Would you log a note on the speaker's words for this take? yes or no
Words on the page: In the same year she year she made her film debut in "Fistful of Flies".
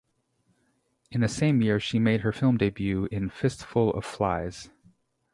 yes